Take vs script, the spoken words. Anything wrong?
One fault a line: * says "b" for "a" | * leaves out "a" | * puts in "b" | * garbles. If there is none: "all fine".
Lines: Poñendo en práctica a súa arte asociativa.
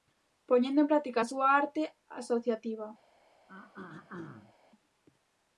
all fine